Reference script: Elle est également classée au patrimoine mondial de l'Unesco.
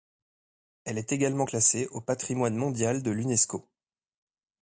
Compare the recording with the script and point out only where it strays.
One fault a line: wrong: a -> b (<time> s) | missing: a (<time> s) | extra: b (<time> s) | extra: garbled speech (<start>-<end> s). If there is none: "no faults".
no faults